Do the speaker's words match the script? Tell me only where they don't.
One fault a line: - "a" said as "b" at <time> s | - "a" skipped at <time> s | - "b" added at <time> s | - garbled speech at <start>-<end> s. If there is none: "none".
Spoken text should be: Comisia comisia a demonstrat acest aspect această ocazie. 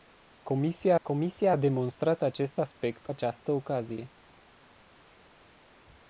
none